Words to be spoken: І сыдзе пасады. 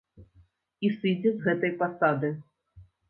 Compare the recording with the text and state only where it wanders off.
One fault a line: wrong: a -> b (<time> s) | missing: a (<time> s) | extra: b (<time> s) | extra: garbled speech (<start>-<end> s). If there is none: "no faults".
extra: з гэтай (1.4 s)